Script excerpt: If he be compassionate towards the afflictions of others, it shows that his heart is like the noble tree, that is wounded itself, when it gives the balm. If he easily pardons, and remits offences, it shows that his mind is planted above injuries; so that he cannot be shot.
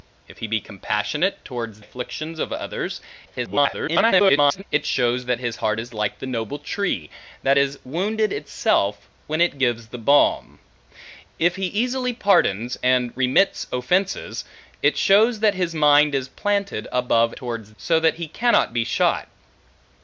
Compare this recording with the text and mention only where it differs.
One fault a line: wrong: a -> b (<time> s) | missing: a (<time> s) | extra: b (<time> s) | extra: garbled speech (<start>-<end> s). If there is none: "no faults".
missing: the (1.8 s)
extra: garbled speech (3.2-4.6 s)
wrong: injuries -> towards (17.4 s)